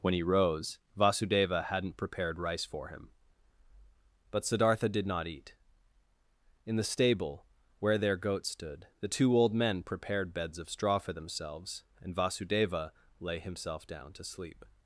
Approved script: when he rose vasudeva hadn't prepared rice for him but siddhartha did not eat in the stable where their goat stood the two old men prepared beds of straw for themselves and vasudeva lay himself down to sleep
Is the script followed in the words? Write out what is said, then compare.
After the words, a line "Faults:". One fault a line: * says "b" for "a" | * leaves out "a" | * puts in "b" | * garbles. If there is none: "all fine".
when he rose vasudeva hadn't prepared rice for him but siddhartha did not eat in the stable where their goat stood the two old men prepared beds of straw for themselves and vasudeva lay himself down to sleep
Faults:
all fine